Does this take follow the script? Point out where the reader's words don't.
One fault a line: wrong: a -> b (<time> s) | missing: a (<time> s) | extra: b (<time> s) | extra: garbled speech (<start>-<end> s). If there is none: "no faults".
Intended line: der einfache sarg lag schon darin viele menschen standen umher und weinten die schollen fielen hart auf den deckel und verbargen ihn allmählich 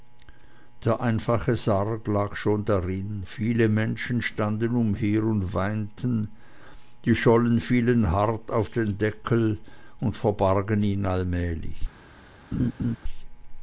no faults